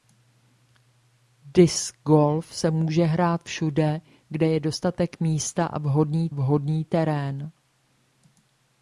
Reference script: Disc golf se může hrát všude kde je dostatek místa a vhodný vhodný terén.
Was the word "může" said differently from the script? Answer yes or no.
no